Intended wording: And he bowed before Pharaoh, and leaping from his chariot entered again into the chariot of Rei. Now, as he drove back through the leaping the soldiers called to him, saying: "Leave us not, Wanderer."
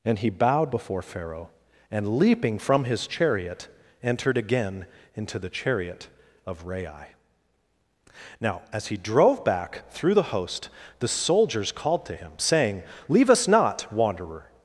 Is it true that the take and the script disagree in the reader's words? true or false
true